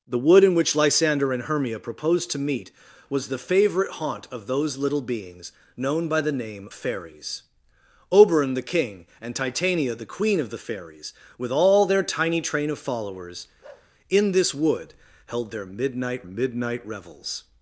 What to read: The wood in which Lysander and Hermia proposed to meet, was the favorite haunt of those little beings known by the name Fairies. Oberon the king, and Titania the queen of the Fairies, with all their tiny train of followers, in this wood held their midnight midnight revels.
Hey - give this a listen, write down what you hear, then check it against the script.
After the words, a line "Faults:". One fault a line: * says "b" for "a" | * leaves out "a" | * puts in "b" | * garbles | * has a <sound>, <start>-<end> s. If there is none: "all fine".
The wood in which Lysander and Hermia proposed to meet, was the favorite haunt of those little beings known by the name Fairies. Oberon the king, and Titania the queen of the Fairies, with all their tiny train of followers, in this wood held their midnight midnight revels.
Faults:
* has a bark, 13.6-13.9 s